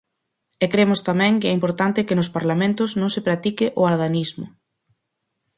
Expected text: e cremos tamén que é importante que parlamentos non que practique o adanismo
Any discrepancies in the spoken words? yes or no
yes